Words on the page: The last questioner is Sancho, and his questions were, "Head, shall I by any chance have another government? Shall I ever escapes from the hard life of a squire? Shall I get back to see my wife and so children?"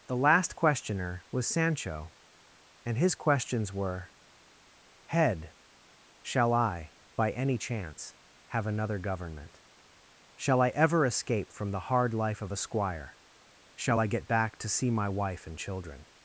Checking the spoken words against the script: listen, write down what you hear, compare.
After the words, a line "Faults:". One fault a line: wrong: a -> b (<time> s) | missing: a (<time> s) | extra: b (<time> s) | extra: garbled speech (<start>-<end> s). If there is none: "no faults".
The last questioner was Sancho, and his questions were, "Head, shall I by any chance have another government? Shall I ever escape from the hard life of a squire? Shall I get back to see my wife and children?"
Faults:
wrong: is -> was (1.3 s)
wrong: escapes -> escape (11.0 s)
missing: so (15.6 s)